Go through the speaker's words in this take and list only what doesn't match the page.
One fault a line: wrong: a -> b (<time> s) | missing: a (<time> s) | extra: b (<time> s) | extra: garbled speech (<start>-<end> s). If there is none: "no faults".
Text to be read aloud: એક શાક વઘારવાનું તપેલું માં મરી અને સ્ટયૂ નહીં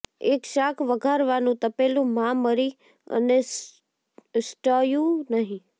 no faults